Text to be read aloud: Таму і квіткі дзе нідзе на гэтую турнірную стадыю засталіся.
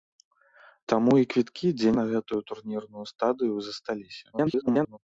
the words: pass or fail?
fail